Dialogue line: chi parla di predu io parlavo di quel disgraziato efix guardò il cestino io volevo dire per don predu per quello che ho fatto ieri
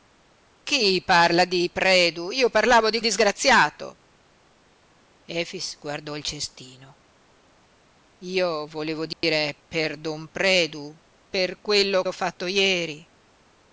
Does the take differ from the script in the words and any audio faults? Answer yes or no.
yes